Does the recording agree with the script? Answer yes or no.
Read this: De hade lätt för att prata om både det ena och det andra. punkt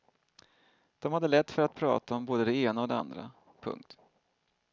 yes